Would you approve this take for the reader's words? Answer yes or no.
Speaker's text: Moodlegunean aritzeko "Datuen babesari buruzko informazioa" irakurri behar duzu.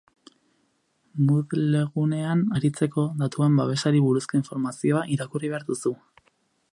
yes